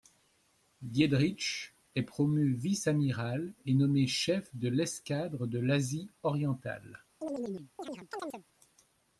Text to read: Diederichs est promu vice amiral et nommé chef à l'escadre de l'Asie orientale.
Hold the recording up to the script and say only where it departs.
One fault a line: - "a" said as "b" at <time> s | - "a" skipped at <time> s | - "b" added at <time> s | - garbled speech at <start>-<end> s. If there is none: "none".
- "à" said as "de" at 4.5 s